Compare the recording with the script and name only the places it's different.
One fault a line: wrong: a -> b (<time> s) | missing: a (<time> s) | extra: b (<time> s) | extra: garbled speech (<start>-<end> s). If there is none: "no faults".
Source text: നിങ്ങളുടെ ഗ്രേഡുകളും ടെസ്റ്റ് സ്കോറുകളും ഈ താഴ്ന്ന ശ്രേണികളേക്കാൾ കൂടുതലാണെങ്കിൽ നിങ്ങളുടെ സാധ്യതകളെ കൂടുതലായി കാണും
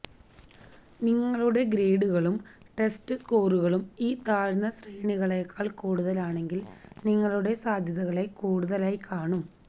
no faults